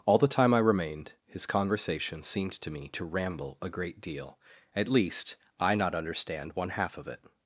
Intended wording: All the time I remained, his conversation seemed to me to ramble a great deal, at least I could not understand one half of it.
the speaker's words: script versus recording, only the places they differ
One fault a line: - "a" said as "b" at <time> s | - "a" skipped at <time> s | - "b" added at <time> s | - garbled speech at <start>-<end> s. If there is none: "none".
- "could" skipped at 5.8 s